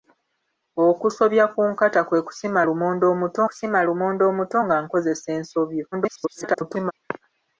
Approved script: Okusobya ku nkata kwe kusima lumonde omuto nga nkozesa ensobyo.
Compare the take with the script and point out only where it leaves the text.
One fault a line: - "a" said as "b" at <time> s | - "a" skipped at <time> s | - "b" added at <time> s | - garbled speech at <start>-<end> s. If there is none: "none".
- "kusima lumonde omuto" added at 3.5 s
- garbled speech at 5.9-6.9 s